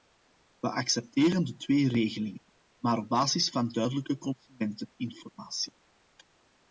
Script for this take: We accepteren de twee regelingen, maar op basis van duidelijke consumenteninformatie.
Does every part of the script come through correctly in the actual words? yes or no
yes